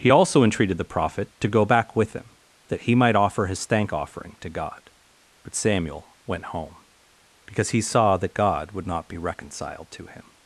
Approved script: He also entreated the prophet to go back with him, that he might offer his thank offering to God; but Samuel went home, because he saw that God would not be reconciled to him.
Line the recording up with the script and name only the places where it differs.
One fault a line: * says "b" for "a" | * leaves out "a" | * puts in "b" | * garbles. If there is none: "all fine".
all fine